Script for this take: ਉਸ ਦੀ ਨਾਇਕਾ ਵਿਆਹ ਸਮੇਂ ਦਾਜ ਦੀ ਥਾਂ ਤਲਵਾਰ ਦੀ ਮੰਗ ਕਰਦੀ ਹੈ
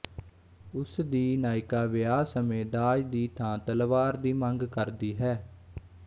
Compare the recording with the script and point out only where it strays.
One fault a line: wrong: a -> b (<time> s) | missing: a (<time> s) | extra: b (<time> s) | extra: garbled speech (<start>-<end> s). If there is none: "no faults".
no faults